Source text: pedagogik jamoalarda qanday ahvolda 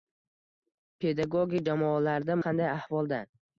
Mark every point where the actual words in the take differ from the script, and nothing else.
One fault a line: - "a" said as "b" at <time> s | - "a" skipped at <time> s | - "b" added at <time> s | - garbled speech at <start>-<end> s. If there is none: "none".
none